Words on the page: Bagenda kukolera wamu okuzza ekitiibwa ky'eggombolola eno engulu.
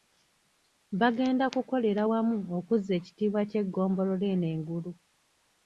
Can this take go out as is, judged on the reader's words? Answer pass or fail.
pass